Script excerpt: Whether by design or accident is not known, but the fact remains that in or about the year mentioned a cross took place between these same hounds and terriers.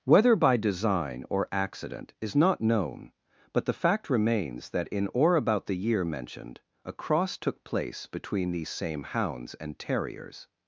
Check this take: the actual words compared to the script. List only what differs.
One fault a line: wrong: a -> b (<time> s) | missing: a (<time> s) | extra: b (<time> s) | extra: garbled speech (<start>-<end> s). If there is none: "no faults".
no faults